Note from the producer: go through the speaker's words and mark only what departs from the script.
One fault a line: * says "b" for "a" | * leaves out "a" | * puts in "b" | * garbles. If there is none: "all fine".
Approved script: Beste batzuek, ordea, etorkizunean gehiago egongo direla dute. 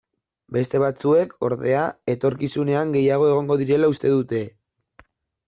* puts in "uste"